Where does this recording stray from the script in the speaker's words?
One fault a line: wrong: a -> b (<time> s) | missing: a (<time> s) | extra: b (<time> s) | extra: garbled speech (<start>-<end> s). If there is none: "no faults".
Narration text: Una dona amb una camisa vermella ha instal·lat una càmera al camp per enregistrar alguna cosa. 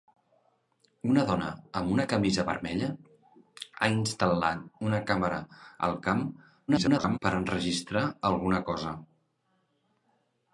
extra: garbled speech (6.7-7.2 s)